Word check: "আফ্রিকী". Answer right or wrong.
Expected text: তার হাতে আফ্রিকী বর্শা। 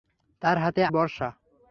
wrong